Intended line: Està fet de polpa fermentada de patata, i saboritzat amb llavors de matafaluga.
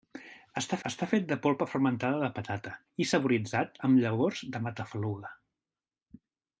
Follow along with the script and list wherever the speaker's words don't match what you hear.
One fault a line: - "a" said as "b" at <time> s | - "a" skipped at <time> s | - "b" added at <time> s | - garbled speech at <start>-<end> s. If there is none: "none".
- "està" added at 0.9 s